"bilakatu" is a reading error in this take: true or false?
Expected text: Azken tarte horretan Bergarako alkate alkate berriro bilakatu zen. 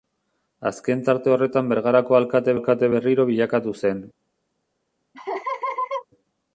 false